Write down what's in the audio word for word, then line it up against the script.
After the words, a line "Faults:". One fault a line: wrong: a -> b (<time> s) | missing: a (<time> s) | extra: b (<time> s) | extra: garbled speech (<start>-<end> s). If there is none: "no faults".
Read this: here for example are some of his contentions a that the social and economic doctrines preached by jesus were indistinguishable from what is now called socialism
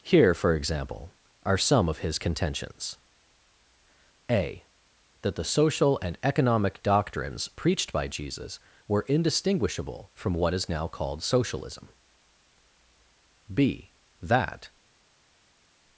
here for example are some of his contentions a that the social and economic doctrines preached by jesus were indistinguishable from what is now called socialism b that
Faults:
extra: b that (13.5 s)